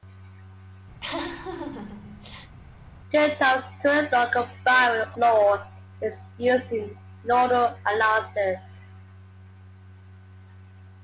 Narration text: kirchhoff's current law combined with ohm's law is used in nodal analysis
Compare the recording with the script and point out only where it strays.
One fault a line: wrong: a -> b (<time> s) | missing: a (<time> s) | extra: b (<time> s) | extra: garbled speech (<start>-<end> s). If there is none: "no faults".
missing: ohm's (5.1 s)